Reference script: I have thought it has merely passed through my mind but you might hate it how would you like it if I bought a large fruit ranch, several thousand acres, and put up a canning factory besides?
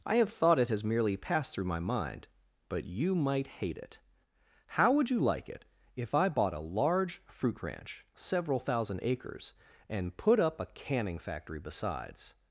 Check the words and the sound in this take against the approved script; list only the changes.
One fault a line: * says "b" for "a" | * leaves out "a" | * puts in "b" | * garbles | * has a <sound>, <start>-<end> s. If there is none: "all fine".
all fine